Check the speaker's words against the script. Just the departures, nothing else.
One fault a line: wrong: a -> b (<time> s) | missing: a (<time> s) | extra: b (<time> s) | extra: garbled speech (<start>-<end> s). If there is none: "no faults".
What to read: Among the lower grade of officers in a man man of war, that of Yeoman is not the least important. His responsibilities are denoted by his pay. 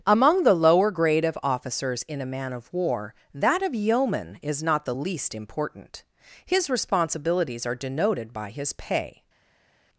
missing: man (2.5 s)